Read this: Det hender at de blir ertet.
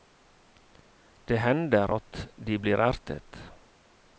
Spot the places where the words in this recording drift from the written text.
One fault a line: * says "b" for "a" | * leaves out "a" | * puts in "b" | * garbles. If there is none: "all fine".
all fine